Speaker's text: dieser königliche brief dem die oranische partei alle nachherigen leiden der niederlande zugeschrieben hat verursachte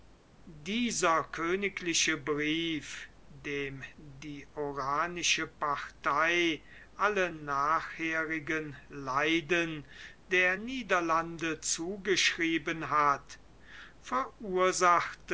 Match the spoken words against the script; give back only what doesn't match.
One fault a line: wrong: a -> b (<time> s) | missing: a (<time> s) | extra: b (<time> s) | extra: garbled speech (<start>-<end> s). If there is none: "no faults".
no faults